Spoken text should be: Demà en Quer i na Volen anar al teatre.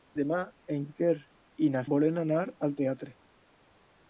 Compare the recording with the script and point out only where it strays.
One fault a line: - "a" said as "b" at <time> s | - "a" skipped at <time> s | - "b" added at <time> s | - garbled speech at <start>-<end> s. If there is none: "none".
none